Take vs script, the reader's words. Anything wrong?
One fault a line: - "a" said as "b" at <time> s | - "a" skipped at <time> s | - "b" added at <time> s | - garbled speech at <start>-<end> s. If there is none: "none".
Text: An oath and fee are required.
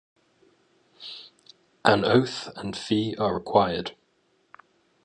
none